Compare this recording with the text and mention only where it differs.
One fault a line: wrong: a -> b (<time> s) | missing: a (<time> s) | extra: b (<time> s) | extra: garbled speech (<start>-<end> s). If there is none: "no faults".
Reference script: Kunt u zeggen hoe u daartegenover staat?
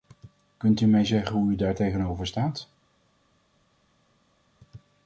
extra: mij (0.8 s)